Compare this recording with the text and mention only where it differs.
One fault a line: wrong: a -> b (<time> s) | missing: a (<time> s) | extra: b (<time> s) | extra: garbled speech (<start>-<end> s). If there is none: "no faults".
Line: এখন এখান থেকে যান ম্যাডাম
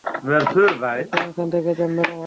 no faults